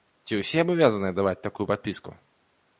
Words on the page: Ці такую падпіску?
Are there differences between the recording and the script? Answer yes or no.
yes